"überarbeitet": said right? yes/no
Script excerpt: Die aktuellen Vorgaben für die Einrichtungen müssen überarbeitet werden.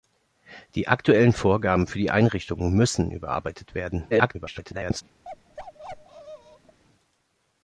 yes